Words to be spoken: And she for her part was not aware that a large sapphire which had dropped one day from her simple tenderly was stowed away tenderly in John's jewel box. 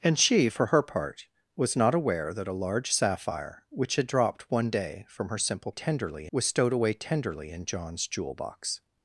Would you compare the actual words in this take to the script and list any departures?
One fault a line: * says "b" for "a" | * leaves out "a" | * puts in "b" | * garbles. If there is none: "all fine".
all fine